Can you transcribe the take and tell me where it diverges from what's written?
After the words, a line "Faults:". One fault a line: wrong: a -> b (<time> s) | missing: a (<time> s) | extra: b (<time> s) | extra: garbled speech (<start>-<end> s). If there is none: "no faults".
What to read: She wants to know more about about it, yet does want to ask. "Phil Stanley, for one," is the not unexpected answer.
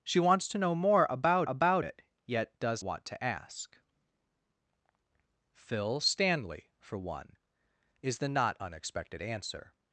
She wants to know more about about it, yet does want to ask. "Phil Stanley, for one," is the not unexpected answer.
Faults:
no faults